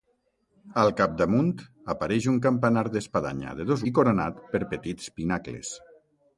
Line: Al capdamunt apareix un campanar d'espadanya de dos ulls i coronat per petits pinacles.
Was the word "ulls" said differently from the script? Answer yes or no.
yes